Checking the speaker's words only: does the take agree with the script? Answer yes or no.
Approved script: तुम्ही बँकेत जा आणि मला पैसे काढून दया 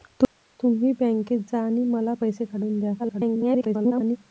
no